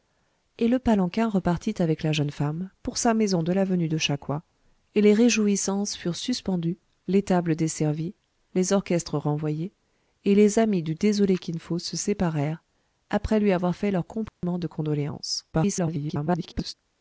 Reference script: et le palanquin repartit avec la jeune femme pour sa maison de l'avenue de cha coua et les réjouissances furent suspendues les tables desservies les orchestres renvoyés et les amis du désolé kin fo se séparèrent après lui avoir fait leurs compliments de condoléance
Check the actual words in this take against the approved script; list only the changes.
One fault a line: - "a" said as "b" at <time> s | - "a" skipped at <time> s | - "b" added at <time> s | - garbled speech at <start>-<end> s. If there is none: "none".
- garbled speech at 15.5-16.7 s